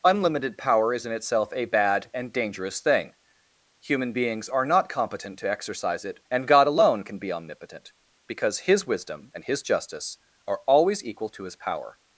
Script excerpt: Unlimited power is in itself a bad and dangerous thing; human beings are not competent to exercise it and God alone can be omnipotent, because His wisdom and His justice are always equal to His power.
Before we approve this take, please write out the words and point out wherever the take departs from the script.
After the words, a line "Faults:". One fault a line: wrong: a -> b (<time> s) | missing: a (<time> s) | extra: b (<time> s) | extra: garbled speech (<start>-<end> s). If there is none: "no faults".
Unlimited power is in itself a bad and dangerous thing; human beings are not competent to exercise it and God alone can be omnipotent, because His wisdom and His justice are always equal to His power.
Faults:
no faults